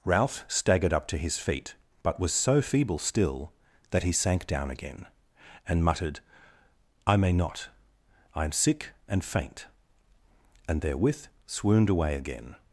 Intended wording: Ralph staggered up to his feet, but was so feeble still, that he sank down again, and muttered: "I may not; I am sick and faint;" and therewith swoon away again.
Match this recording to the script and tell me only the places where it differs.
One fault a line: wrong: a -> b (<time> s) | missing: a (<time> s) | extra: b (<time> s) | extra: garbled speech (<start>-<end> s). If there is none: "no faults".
wrong: swoon -> swooned (11.5 s)